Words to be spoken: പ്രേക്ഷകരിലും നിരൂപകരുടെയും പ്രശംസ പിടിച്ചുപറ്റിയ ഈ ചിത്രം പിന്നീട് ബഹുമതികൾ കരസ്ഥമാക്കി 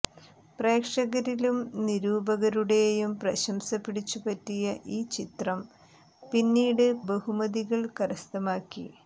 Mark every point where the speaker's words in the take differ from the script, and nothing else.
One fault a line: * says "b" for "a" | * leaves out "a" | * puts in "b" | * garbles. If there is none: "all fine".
all fine